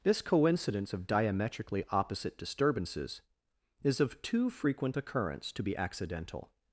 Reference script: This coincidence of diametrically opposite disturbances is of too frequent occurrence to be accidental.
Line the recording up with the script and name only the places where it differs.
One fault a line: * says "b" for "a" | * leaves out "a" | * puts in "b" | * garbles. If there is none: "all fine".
all fine